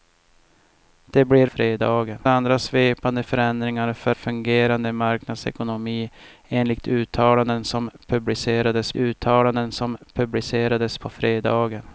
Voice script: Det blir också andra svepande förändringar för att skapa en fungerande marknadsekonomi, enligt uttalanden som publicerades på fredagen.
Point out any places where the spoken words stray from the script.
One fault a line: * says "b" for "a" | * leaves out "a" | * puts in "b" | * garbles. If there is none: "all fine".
* says "fredagen" for "också"
* says "fungerande marknadsekonomi enligt uttalanden som publicerades" for "att skapa en fungerande marknadsekonomi enligt"